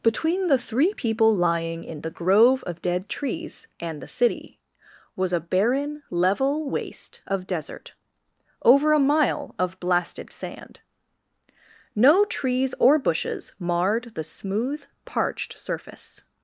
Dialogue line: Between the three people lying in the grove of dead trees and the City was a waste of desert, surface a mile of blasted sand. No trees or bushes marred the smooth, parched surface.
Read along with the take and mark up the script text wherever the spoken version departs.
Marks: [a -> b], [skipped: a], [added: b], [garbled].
Between the three people lying in the grove of dead trees and the City was a [added: barren level] waste of desert, [surface -> over] a mile of blasted sand. No trees or bushes marred the smooth, parched surface.